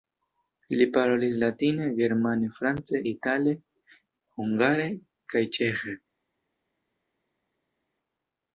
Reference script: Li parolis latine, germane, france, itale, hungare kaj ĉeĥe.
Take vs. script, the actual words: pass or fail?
pass